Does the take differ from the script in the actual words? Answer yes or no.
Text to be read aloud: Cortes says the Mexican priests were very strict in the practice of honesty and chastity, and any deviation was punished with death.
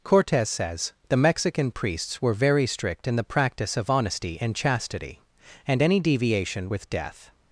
yes